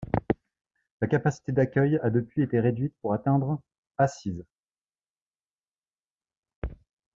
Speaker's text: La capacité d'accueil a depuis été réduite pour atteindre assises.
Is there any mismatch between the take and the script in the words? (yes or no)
no